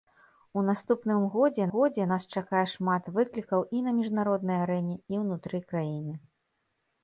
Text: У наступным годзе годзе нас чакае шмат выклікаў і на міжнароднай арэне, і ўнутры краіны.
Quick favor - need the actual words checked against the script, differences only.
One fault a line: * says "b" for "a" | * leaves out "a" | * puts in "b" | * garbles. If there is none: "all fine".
all fine